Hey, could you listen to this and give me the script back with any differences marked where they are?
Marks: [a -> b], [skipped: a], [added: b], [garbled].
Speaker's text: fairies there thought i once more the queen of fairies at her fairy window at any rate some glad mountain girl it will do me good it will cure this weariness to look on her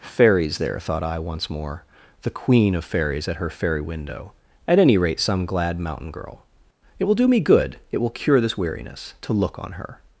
fairies there thought i once more the queen of fairies at her fairy window at any rate some glad mountain girl it will do me good it will cure this weariness to look on her